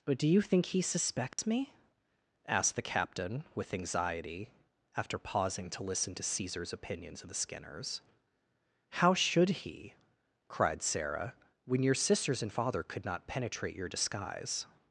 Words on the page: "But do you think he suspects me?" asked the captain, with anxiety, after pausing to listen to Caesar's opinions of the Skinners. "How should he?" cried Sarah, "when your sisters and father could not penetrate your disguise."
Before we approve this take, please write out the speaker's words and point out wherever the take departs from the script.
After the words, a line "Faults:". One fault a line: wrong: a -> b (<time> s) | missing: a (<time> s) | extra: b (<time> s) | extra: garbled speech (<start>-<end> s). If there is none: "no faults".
"But do you think he suspects me?" asked the captain, with anxiety, after pausing to listen to Caesar's opinions of the Skinners. "How should he?" cried Sarah, "when your sisters and father could not penetrate your disguise."
Faults:
no faults